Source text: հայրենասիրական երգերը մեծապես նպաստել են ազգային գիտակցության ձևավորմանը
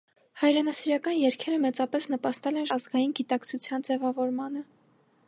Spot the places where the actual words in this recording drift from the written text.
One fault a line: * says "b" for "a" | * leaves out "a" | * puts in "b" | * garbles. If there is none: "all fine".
all fine